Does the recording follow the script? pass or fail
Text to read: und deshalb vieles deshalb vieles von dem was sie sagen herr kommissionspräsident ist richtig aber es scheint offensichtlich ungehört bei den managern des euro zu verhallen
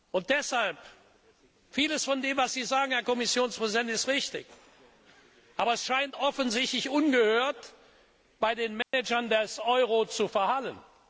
fail